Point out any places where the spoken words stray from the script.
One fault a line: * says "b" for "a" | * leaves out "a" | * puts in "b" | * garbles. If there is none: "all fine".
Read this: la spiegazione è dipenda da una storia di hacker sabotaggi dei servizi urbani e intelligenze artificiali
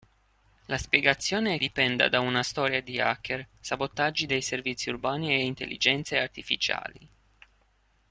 all fine